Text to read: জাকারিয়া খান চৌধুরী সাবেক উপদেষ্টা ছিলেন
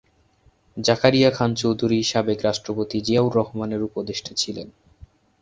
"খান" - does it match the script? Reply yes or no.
yes